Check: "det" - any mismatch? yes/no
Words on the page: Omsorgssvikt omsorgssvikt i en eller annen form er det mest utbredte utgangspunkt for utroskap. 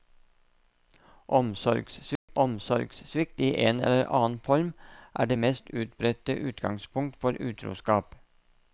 no